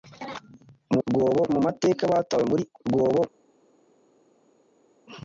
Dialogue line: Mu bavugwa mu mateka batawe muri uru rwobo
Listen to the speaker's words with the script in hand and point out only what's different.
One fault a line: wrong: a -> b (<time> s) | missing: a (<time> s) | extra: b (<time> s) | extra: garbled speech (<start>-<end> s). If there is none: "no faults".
wrong: bavugwa -> rwobo (1.1 s)
missing: uru (2.6 s)